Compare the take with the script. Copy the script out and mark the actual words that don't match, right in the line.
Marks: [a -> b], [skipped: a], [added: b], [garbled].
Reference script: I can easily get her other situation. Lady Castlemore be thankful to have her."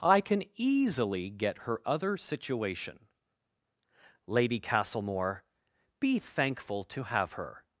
I can easily get her other situation. Lady Castlemore be thankful to have her."